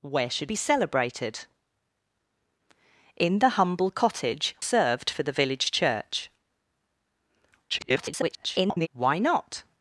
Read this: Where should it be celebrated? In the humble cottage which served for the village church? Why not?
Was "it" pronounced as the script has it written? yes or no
no